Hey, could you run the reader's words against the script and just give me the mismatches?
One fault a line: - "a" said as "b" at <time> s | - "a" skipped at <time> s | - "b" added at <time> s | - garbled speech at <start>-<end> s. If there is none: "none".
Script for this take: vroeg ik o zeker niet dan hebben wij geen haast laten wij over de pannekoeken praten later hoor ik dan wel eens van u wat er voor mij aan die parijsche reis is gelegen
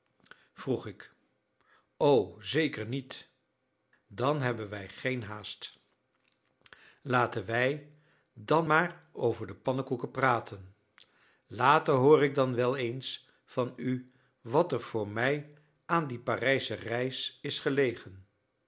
- "dan maar" added at 8.3 s